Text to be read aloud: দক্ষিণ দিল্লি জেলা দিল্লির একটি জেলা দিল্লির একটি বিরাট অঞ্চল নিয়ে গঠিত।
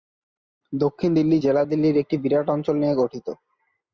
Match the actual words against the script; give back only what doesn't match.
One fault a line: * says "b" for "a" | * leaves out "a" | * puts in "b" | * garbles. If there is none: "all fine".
* leaves out "জেলা দিল্লির একটি"